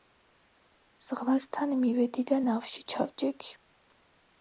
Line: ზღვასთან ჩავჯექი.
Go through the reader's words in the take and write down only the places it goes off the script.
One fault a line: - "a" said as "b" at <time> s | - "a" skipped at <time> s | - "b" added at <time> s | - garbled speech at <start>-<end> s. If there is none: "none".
- "მივედი და ნავში" added at 1.8 s